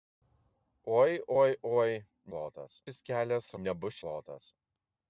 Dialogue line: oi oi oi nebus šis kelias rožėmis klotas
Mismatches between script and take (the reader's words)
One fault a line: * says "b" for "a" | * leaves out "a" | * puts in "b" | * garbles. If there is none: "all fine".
* says "klotas" for "nebus"
* says "nebus" for "rožėmis"